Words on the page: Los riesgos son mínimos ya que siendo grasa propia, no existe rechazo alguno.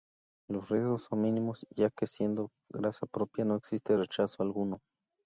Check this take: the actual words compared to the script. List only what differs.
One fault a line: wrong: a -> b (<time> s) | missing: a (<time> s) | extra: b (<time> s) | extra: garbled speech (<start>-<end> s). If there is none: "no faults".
no faults